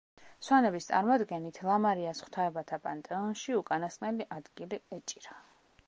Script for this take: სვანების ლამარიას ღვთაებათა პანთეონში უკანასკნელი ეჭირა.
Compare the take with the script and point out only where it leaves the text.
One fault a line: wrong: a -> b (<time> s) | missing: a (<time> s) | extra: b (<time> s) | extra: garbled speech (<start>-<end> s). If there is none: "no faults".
extra: წარმოდგენით (0.9 s)
extra: ადგილი (4.4 s)